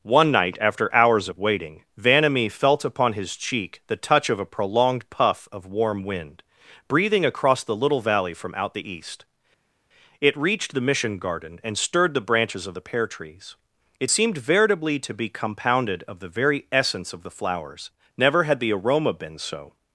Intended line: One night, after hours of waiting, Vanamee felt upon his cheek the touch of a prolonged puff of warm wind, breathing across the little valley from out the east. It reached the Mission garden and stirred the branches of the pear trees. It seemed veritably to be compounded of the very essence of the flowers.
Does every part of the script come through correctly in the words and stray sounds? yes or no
no